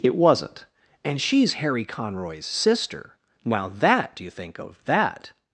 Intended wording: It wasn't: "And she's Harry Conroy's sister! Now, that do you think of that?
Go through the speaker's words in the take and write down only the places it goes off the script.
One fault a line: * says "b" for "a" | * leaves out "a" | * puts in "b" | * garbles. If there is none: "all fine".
all fine